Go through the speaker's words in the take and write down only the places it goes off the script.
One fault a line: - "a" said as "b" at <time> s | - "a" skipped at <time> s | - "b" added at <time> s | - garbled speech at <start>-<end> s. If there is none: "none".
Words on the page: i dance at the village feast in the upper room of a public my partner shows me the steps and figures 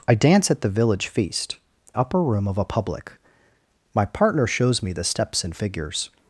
- "in the" skipped at 1.6 s